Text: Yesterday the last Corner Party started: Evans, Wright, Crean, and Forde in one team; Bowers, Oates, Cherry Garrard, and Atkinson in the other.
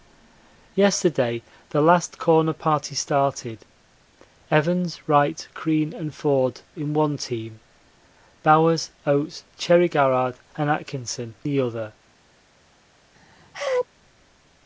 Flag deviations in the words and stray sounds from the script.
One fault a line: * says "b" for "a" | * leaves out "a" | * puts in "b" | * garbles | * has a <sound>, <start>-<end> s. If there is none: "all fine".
* leaves out "in"
* has a sneeze, 13.1-13.9 s